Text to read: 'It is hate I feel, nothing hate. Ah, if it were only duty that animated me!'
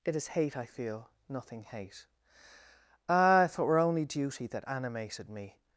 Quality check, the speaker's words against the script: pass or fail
pass